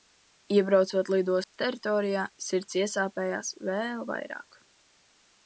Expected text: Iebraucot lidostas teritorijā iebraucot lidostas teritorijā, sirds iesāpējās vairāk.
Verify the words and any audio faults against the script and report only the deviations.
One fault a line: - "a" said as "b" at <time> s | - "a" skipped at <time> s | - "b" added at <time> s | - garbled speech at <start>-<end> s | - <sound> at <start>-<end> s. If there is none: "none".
- dropout at 1.4-1.5 s
- "iebraucot lidostas teritorijā" skipped at 2.2 s
- "vēl" added at 3.7 s